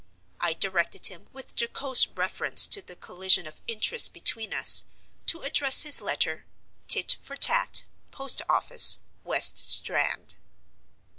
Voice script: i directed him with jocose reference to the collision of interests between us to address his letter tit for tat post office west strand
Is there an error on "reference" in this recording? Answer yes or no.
no